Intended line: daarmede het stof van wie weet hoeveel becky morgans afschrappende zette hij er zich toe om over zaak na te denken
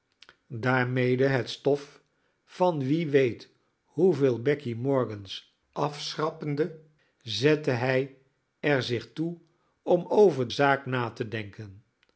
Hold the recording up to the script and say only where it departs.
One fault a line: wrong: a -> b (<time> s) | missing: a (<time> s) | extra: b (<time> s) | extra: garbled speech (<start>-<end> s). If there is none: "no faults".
no faults